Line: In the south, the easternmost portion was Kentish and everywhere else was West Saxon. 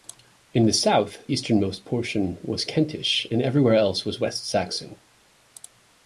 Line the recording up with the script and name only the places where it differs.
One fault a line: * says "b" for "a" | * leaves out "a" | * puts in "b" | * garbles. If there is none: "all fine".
* leaves out "the"